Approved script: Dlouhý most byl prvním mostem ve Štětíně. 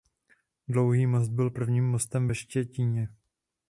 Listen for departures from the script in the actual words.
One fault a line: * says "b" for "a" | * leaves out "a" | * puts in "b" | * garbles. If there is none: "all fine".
all fine